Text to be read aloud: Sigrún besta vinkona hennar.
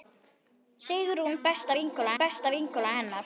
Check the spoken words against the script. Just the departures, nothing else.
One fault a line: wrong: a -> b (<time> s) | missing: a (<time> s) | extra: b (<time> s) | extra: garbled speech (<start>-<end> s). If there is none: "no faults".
extra: besta vinkona (2.2 s)